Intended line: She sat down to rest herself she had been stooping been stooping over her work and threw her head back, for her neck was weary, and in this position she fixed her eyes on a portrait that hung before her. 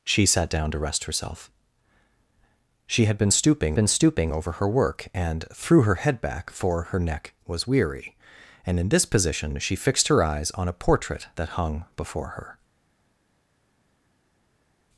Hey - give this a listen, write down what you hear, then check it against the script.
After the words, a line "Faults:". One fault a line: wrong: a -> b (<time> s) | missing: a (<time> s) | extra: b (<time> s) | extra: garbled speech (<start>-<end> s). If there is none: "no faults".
She sat down to rest herself she had been stooping been stooping over her work and threw her head back, for her neck was weary, and in this position she fixed her eyes on a portrait that hung before her.
Faults:
no faults